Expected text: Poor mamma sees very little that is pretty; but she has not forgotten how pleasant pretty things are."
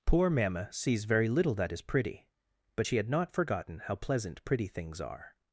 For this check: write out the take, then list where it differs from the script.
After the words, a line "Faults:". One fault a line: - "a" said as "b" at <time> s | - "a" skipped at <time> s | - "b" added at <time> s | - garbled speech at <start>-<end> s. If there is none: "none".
Poor mamma sees very little that is pretty; but she had not forgotten how pleasant pretty things are."
Faults:
- "has" said as "had" at 3.0 s